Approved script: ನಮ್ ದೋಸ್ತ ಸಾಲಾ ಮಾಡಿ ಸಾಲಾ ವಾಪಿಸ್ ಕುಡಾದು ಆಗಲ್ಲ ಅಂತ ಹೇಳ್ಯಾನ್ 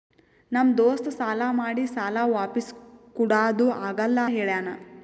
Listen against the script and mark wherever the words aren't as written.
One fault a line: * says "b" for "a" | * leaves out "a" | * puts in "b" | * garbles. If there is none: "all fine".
* leaves out "ಅಂತ"